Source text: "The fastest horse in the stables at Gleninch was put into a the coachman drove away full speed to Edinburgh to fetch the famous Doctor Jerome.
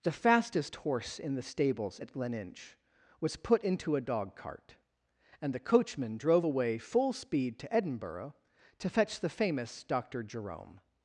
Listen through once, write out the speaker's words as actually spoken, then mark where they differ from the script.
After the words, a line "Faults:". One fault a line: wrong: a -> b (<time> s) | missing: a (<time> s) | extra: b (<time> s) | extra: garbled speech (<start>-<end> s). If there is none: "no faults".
"The fastest horse in the stables at Gleninch was put into a dog cart, and the coachman drove away full speed to Edinburgh to fetch the famous Doctor Jerome.
Faults:
extra: dog cart and (4.0 s)